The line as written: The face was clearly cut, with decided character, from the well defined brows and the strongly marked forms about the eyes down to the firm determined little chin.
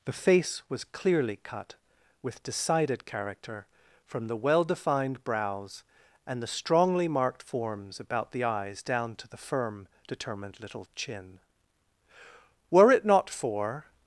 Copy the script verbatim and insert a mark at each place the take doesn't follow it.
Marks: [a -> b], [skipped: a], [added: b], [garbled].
The face was clearly cut, with decided character, from the well defined brows and the strongly marked forms about the eyes down to the firm determined little chin. [added: Were it not for]